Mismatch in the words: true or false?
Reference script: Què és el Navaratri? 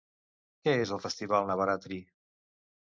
true